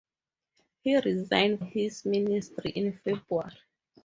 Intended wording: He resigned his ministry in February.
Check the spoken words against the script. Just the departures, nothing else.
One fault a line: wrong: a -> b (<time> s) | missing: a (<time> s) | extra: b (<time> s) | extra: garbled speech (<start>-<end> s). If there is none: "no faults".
no faults